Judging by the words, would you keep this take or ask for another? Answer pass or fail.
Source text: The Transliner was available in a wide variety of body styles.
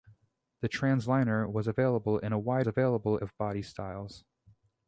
fail